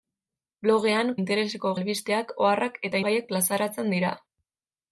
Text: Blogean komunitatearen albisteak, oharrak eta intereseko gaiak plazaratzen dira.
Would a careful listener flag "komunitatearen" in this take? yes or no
yes